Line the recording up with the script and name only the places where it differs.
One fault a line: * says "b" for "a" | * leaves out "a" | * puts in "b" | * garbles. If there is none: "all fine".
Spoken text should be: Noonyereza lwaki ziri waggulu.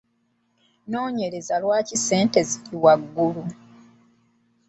* puts in "ssente"